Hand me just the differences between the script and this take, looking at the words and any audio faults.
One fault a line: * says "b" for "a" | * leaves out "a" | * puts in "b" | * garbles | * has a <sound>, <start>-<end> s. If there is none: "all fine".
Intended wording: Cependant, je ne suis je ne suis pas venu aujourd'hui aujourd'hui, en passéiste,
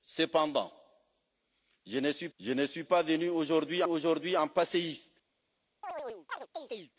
* has a chirp, 5.8-6.9 s